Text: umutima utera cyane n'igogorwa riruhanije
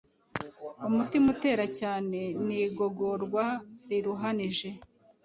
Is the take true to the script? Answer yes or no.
yes